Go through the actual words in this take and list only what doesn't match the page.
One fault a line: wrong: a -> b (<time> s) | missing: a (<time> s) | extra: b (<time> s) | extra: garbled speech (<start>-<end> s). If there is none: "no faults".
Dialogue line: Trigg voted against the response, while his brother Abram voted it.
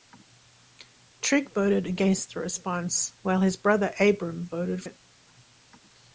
no faults